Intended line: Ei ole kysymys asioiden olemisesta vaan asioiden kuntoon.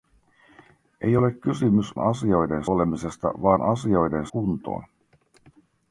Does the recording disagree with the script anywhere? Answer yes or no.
no